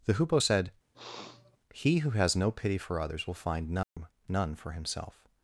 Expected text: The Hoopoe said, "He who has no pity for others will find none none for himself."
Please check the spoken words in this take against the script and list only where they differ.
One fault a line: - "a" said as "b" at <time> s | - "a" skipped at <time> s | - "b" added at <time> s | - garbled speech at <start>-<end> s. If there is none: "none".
none